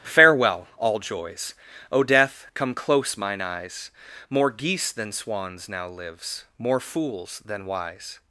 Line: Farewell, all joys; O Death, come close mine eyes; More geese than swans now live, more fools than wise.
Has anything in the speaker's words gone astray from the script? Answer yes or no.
yes